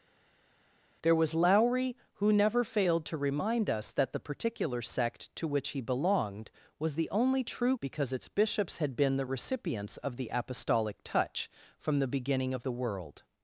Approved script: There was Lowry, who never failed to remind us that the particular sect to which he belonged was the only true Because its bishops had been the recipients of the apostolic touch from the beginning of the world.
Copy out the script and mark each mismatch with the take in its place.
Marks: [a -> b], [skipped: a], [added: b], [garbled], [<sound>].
There was Lowry, who never failed to remind us that the particular sect to which he belonged was the only true Because its bishops had been the recipients of the apostolic touch from the beginning of the world.